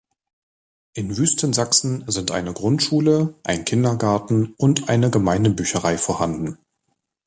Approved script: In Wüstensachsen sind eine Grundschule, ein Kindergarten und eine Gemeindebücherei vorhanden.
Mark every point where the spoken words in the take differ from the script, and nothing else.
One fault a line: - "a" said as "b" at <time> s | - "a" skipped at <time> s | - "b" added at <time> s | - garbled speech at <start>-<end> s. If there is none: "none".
none